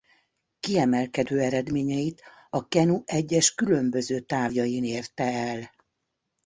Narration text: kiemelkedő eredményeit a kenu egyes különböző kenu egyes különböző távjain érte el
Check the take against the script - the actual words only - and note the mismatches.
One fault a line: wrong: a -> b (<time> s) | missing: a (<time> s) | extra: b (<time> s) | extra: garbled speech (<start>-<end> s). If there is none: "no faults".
missing: kenu egyes különböző (4.2 s)